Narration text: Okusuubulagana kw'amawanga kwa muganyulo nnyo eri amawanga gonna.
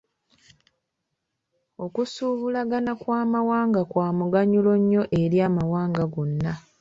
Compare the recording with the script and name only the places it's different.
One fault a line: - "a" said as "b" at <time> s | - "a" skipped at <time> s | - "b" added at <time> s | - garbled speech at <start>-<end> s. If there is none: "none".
none